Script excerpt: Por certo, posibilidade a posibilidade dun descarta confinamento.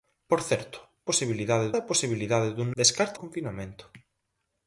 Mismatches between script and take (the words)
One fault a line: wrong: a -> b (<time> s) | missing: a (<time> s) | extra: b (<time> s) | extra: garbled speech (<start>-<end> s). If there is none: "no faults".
no faults